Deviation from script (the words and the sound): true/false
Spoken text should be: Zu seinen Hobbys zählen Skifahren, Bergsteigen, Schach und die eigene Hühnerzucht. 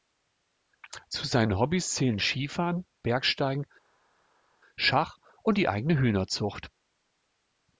false